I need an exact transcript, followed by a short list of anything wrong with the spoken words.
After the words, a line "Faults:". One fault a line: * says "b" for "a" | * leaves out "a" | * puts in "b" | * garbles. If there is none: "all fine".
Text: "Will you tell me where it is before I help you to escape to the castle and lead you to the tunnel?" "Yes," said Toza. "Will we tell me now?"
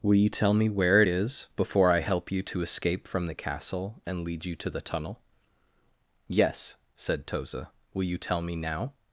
"Will you tell me where it is before I help you to escape from the castle and lead you to the tunnel?" "Yes," said Toza. "Will you tell me now?"
Faults:
* says "from" for "to"
* says "you" for "we"